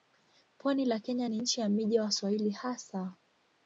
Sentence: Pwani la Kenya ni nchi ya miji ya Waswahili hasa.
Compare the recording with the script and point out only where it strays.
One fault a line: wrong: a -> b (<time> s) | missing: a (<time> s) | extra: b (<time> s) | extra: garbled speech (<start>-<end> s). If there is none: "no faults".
no faults